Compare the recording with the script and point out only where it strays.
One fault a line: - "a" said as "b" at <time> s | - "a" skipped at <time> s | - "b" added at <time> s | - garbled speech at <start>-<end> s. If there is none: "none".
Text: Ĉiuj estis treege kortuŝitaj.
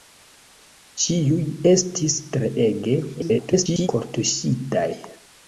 - garbled speech at 3.1-3.9 s